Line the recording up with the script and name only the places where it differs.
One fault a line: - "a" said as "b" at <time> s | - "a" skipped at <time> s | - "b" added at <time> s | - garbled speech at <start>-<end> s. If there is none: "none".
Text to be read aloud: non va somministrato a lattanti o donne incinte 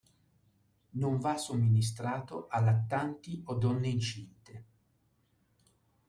none